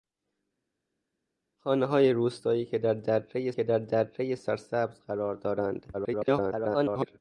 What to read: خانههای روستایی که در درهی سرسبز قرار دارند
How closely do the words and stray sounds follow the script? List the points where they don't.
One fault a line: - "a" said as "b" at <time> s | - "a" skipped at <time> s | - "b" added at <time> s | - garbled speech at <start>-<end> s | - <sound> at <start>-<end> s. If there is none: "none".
- "که در درهی" added at 3.5 s
- garbled speech at 5.9-7.2 s